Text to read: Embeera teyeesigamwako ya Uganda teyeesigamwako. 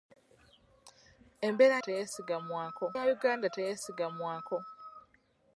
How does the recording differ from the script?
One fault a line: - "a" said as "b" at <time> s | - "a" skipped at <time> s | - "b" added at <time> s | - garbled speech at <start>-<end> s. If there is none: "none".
none